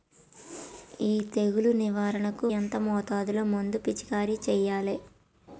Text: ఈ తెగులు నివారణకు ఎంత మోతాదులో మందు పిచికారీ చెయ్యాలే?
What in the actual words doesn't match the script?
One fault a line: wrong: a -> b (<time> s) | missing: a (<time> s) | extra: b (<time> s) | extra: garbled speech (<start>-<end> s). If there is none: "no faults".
no faults